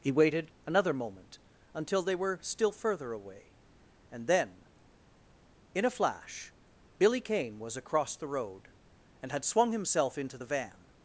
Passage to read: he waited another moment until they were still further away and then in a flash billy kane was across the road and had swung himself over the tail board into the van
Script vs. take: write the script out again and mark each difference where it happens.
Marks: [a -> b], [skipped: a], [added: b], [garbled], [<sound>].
he waited another moment until they were still further away and then in a flash billy kane was across the road and had swung himself [skipped: over the tail board] into the van